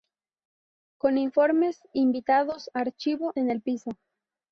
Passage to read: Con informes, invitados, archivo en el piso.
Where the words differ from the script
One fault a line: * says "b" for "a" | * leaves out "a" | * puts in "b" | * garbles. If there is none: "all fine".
all fine